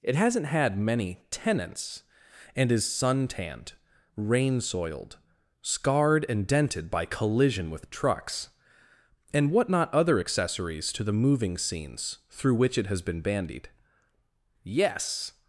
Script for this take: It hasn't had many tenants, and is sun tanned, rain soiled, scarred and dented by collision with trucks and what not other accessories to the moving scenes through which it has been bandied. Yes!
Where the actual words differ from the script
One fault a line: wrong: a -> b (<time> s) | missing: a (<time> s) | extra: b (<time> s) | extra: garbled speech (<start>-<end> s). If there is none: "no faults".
no faults